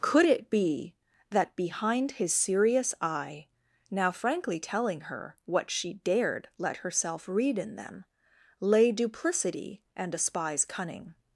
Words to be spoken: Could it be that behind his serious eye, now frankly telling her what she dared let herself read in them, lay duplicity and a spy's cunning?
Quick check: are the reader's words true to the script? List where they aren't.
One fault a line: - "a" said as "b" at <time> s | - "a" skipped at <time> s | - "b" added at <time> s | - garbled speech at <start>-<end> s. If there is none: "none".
none